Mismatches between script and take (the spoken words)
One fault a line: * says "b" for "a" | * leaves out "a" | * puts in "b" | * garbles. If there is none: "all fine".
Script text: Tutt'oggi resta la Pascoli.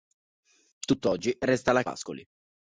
all fine